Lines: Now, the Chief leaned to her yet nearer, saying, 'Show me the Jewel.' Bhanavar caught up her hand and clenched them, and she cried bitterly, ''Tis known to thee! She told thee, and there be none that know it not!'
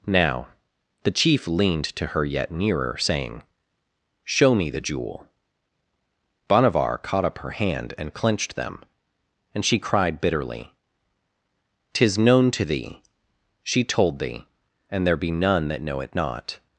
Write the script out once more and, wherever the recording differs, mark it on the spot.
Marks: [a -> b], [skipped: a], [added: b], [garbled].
Now, the Chief leaned to her yet nearer, saying, 'Show me the Jewel.' Bhanavar caught up her hand and clenched them, and she cried bitterly, ''Tis known to thee! She told thee, and there be none that know it not!'